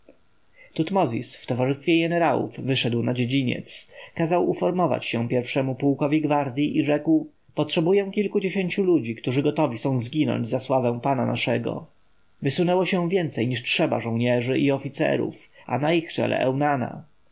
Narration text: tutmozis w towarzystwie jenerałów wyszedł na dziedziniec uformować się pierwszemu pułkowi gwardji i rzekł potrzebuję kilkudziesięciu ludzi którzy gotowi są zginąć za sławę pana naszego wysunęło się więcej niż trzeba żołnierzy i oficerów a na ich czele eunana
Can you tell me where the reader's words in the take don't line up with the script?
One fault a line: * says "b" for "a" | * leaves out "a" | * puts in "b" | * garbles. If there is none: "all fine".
* puts in "kazał"